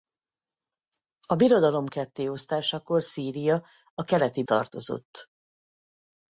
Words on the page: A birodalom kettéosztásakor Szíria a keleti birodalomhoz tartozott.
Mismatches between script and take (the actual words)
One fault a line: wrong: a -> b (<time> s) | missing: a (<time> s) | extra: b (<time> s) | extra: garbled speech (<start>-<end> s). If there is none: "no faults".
missing: birodalomhoz (4.4 s)